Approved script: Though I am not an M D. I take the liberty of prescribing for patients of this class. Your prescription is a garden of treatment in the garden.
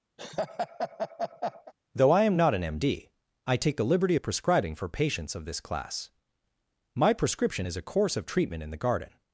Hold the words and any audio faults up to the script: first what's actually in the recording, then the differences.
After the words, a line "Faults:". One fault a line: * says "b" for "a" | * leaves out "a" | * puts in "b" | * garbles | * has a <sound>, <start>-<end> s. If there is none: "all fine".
Though I am not an M D. I take the liberty of prescribing for patients of this class. My prescription is a course of treatment in the garden.
Faults:
* has a laugh, 0.2-1.7 s
* says "My" for "Your"
* says "course" for "garden"